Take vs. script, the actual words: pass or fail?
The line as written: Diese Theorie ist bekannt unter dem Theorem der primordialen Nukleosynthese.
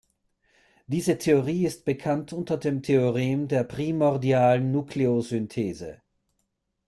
pass